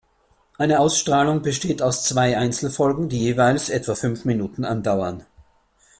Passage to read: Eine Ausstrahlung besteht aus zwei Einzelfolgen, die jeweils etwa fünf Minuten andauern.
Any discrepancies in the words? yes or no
no